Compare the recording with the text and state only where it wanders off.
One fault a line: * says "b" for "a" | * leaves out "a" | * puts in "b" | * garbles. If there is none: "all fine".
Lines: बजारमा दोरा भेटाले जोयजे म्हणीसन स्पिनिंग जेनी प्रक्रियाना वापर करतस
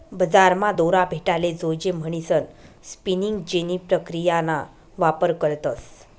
all fine